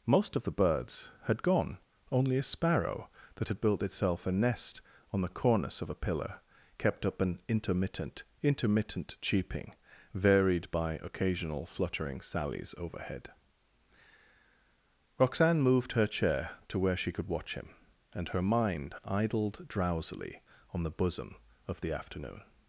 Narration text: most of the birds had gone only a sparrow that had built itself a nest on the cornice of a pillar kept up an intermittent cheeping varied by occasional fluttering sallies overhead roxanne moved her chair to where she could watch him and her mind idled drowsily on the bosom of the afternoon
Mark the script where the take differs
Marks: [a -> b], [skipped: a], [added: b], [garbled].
most of the birds had gone only a sparrow that had built itself a nest on the cornice of a pillar kept up an intermittent [added: intermittent] cheeping varied by occasional fluttering sallies overhead roxanne moved her chair to where she could watch him and her mind idled drowsily on the bosom of the afternoon